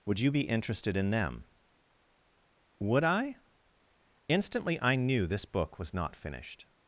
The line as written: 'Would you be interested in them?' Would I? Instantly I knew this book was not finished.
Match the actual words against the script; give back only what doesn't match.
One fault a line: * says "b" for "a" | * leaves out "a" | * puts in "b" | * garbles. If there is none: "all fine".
all fine